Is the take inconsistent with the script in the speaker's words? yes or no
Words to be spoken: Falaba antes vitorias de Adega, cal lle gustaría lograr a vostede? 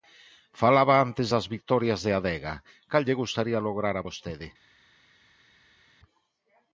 yes